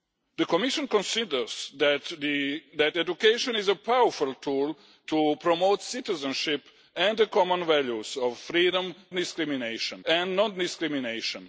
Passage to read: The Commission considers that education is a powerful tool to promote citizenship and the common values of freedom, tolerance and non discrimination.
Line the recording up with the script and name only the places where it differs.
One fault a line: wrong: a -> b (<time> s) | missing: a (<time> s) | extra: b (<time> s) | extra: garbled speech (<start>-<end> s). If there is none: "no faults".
wrong: tolerance -> discrimination (9.1 s)